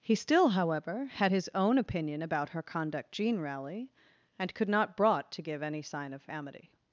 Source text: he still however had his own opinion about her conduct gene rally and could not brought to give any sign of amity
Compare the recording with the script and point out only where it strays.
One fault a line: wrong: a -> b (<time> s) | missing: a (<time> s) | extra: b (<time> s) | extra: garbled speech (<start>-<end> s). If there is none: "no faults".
no faults